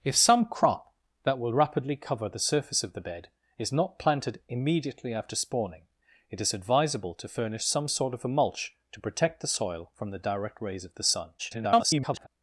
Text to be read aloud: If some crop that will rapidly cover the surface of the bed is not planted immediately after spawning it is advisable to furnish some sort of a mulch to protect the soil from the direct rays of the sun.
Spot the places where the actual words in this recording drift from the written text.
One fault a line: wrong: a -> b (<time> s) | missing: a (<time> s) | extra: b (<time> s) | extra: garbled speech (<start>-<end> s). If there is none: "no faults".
extra: garbled speech (11.4-12.3 s)